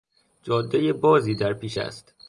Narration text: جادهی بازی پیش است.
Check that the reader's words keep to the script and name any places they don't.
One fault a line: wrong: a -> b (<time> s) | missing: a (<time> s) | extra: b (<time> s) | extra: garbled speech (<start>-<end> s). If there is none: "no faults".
extra: در (1.4 s)